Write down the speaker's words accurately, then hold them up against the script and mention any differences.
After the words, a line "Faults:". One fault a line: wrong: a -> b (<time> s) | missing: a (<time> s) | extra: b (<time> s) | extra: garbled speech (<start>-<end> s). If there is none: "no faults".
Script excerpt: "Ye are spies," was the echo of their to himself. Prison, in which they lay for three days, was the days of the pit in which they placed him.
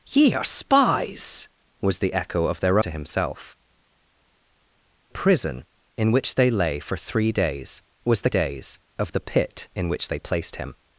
"Ye are spies," was the echo of their to himself. Prison, in which they lay for three days, was the days of the pit in which they placed him.
Faults:
no faults